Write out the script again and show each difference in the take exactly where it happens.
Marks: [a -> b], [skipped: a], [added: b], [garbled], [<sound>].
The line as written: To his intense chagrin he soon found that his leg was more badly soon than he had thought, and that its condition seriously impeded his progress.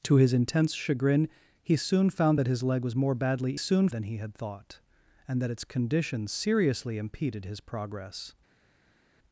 To his intense chagrin he soon found that his leg was more badly soon than he had thought, and that its condition seriously impeded his progress.